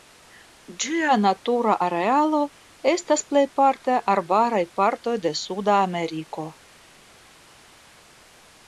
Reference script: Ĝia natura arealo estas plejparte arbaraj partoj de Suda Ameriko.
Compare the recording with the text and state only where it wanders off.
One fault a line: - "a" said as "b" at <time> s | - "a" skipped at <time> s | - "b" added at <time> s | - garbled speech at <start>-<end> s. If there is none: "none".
none